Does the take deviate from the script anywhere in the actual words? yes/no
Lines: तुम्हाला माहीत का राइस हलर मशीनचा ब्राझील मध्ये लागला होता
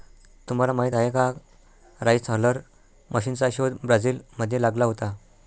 yes